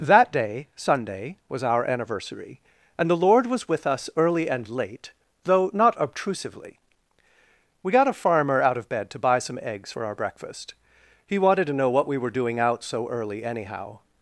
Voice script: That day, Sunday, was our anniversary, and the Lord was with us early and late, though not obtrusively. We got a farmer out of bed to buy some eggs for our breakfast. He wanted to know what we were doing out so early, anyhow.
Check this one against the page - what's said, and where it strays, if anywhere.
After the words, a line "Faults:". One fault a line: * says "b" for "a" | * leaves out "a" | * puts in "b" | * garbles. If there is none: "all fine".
That day, Sunday, was our anniversary, and the Lord was with us early and late, though not obtrusively. We got a farmer out of bed to buy some eggs for our breakfast. He wanted to know what we were doing out so early, anyhow.
Faults:
all fine